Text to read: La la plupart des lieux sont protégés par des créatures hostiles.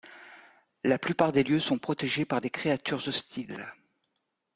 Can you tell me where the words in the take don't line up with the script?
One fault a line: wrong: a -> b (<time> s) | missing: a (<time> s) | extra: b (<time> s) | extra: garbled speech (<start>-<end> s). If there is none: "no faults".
missing: la (1.0 s)